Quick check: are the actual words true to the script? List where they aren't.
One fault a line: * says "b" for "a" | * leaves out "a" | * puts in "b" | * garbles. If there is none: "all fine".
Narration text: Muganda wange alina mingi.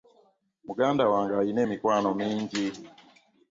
* puts in "emikwano"